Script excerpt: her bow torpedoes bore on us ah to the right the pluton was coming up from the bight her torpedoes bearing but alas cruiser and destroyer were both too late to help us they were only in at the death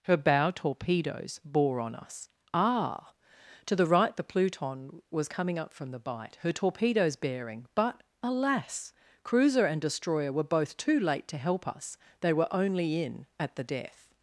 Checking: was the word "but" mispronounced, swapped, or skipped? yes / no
no